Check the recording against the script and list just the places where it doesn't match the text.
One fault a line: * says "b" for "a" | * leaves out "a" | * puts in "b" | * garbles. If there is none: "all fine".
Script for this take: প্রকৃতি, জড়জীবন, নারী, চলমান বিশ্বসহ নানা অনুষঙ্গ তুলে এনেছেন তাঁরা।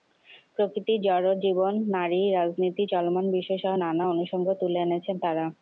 * puts in "রাজনীতি"